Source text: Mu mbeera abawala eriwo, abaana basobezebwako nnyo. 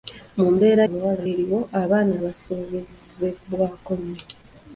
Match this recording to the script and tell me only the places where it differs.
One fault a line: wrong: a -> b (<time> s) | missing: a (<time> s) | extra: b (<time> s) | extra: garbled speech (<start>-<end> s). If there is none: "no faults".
no faults